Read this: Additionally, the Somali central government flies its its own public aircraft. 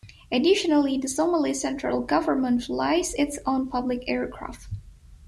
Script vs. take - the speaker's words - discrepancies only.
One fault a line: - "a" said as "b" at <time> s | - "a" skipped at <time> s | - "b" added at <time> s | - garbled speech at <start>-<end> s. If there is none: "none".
- "its" skipped at 3.4 s